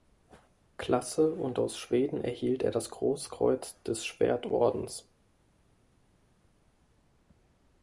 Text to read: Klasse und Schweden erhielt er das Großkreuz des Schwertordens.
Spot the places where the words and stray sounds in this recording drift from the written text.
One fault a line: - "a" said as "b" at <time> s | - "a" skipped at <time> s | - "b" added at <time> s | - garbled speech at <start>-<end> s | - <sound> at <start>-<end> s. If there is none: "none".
- "aus" added at 1.6 s